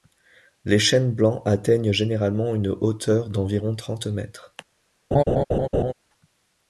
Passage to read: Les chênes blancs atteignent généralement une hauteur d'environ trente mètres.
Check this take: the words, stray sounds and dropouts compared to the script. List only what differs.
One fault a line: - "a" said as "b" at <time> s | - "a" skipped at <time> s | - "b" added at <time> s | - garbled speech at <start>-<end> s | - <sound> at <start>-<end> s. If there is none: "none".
- laugh at 5.1-5.9 s